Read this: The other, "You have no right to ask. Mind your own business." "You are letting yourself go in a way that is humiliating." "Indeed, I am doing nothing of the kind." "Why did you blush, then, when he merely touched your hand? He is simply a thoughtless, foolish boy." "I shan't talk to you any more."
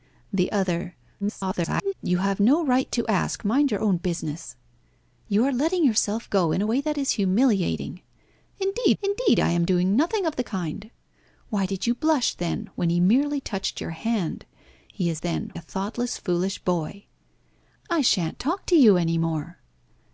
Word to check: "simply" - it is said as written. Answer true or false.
false